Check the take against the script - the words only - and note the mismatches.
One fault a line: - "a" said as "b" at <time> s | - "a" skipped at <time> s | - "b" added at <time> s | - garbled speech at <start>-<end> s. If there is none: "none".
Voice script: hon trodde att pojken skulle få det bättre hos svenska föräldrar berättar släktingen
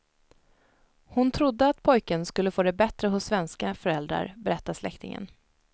none